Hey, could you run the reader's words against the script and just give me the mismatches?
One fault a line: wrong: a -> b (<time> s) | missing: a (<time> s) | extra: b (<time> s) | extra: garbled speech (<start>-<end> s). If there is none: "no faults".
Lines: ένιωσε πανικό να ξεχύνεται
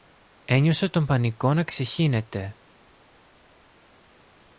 extra: τον (0.9 s)